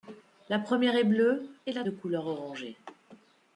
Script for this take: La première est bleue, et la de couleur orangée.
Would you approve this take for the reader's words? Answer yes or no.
yes